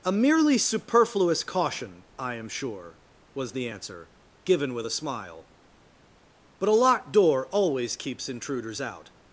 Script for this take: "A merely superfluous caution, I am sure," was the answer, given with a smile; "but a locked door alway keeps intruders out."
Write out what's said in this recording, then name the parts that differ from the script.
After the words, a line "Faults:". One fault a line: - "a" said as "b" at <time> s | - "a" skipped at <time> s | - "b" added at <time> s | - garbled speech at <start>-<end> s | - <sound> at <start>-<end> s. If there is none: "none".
"A merely superfluous caution, I am sure," was the answer, given with a smile; "but a locked door always keeps intruders out."
Faults:
- "alway" said as "always" at 7.5 s